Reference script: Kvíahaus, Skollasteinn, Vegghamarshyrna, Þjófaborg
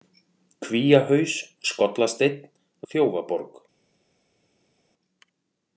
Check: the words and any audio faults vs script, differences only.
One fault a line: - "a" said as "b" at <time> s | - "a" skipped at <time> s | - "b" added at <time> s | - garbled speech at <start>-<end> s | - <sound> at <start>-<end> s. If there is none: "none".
- "Vegghamarshyrna" skipped at 2.4 s